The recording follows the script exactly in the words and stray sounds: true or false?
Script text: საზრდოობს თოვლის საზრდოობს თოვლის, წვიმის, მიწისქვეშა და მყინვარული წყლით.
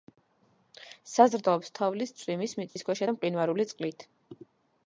false